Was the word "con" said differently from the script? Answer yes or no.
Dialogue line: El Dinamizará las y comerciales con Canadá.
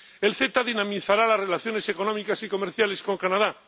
no